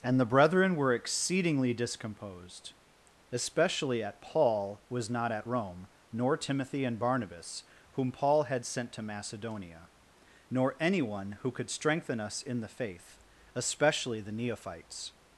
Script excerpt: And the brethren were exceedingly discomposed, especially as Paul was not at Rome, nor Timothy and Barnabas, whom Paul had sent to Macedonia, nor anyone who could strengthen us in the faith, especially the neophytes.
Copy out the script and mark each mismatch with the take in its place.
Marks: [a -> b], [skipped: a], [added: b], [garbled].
And the brethren were exceedingly discomposed, especially [as -> at] Paul was not at Rome, nor Timothy and Barnabas, whom Paul had sent to Macedonia, nor anyone who could strengthen us in the faith, especially the neophytes.